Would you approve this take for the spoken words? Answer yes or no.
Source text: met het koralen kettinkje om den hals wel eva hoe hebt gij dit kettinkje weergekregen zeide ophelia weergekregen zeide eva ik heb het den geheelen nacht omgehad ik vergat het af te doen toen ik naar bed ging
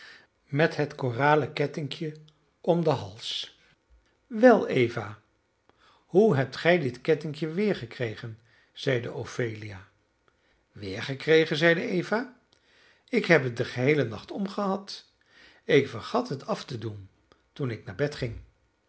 yes